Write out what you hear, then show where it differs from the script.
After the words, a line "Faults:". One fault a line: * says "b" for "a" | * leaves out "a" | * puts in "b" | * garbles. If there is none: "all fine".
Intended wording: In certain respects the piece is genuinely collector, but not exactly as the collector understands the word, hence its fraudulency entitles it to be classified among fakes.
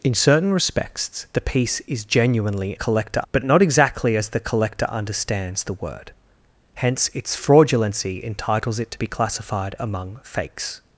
In certain respects the piece is genuinely collector, but not exactly as the collector understands the word, hence its fraudulency entitles it to be classified among fakes.
Faults:
all fine